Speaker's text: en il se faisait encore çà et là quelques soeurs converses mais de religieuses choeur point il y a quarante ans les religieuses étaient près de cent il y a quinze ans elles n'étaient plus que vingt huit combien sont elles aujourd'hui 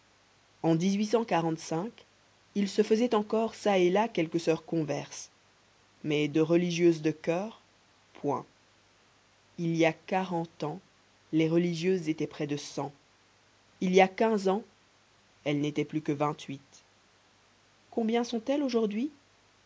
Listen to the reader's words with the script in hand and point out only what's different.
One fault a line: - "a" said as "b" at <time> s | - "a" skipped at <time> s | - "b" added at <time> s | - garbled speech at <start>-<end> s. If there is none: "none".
- "de" added at 7.0 s